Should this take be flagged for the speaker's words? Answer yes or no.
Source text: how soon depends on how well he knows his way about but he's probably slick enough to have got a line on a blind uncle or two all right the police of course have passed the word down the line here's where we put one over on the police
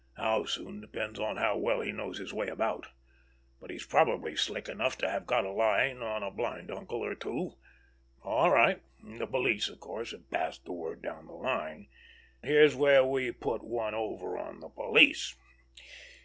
no